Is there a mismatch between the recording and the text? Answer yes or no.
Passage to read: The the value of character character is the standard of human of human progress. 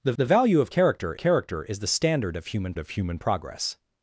no